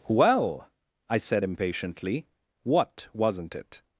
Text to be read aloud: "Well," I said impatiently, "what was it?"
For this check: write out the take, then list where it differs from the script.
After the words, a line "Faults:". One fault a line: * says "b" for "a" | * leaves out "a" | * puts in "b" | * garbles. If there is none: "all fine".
"Well," I said impatiently, "what wasn't it?"
Faults:
* says "wasn't" for "was"